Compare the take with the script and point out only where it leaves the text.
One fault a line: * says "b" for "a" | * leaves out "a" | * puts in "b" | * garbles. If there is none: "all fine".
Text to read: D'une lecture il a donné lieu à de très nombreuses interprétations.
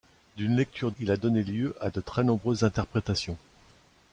all fine